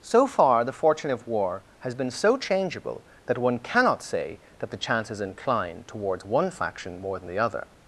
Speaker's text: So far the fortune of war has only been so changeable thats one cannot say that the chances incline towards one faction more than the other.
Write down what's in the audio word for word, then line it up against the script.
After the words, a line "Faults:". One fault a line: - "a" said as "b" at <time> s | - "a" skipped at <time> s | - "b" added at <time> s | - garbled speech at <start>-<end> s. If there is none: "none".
So far the fortune of war has been so changeable that one cannot say that the chances incline towards one faction more than the other.
Faults:
- "only" skipped at 1.9 s
- "thats" said as "that" at 3.2 s